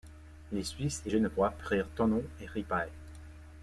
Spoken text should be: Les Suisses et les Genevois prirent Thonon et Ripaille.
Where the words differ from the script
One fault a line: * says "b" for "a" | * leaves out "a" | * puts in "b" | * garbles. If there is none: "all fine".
* leaves out "les"